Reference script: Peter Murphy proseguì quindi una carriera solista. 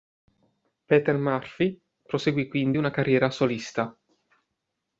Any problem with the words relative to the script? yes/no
no